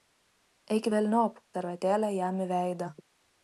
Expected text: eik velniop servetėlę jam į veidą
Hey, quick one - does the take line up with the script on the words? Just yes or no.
yes